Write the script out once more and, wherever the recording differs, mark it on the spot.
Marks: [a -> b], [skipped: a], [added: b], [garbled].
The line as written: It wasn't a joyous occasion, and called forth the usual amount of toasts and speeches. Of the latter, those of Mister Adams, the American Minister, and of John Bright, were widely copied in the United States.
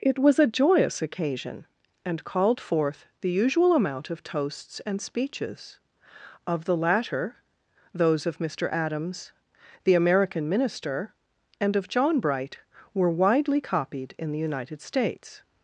It [wasn't -> was] a joyous occasion, and called forth the usual amount of toasts and speeches. Of the latter, those of Mister Adams, the American Minister, and of John Bright, were widely copied in the United States.